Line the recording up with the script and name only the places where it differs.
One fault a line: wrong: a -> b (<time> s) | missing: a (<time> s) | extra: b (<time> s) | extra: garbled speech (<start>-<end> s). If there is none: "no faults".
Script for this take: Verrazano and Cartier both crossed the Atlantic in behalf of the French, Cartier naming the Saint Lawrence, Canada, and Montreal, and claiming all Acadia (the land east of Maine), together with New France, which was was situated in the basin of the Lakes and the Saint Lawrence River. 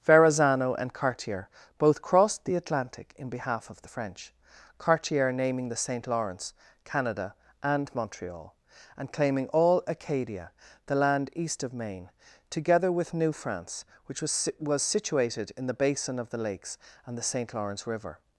no faults